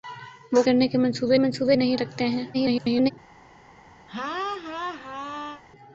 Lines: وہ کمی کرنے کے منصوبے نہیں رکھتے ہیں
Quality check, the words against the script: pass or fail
fail